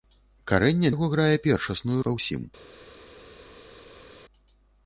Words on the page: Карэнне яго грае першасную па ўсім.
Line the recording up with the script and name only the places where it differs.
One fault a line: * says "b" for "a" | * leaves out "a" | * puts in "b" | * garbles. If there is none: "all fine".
all fine